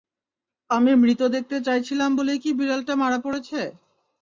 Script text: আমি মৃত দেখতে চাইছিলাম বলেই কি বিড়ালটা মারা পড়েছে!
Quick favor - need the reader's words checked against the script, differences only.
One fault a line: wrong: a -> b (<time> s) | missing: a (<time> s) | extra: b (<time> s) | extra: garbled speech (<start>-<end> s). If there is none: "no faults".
no faults